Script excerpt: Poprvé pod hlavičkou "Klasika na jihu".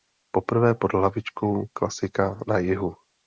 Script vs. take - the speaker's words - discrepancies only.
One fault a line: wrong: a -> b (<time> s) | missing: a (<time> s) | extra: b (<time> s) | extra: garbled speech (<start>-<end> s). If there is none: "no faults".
no faults